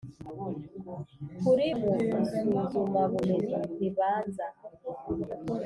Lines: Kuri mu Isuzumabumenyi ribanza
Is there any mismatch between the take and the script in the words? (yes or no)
no